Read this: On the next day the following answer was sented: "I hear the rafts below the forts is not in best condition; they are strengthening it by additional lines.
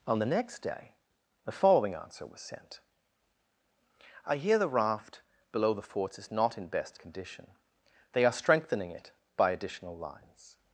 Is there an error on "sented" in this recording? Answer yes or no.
yes